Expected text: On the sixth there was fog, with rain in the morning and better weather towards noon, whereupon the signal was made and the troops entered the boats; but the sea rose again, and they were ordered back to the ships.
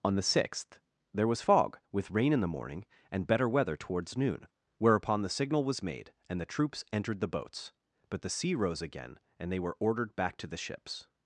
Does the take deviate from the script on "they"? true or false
false